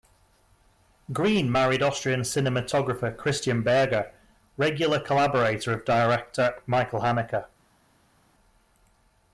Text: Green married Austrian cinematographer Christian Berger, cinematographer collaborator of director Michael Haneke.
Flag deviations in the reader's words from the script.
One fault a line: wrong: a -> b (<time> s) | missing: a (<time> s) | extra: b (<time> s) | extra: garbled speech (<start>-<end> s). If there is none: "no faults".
wrong: cinematographer -> regular (4.5 s)